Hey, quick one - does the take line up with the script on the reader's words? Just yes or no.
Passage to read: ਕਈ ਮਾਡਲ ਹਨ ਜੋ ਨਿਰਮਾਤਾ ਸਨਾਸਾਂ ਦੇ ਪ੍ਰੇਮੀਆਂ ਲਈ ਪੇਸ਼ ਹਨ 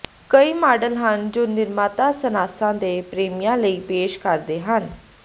no